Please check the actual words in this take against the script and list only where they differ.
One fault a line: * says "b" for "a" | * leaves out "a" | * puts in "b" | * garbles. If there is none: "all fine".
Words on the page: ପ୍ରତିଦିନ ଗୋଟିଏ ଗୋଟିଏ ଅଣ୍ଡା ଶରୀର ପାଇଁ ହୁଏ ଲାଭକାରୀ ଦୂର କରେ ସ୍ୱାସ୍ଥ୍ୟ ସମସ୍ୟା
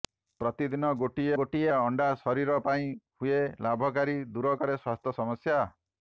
all fine